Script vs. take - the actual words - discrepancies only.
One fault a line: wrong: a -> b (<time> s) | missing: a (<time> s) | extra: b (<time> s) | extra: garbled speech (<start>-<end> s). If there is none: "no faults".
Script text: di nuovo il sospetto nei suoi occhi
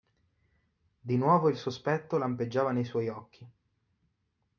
extra: lampeggiava (2.2 s)